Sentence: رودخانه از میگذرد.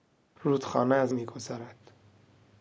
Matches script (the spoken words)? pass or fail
pass